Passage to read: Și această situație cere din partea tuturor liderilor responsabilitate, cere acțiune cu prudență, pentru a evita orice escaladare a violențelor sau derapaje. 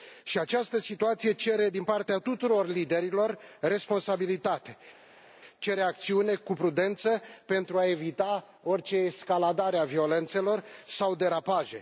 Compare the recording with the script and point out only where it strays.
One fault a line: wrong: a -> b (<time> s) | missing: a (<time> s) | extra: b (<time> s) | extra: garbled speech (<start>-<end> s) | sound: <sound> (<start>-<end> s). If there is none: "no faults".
no faults